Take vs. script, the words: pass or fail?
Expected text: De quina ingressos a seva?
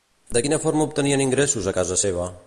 fail